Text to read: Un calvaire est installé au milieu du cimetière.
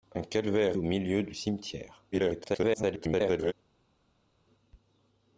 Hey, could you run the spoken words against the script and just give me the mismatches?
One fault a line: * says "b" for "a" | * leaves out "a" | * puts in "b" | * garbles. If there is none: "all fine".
* leaves out "est installé"
* garbles